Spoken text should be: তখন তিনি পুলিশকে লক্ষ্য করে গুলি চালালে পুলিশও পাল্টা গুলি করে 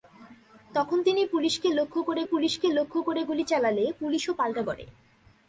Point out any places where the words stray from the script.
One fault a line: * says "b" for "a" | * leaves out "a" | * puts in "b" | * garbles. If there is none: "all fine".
* puts in "পুলিশকে লক্ষ্য করে"
* leaves out "গুলি"